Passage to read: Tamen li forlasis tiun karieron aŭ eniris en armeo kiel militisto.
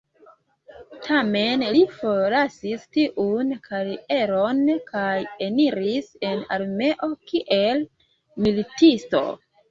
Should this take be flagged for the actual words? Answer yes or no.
yes